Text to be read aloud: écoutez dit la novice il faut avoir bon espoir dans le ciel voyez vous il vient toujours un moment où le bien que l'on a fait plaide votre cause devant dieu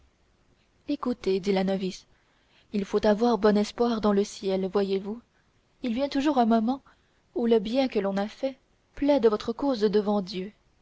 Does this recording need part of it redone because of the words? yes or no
no